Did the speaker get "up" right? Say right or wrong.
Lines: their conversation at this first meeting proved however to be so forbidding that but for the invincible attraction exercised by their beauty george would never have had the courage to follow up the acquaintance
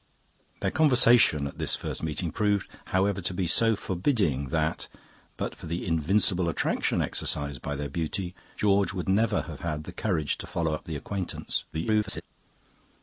right